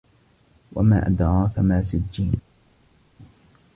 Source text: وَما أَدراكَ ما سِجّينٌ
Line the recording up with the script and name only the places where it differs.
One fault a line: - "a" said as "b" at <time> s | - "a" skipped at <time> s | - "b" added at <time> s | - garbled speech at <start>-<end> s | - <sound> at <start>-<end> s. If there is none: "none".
none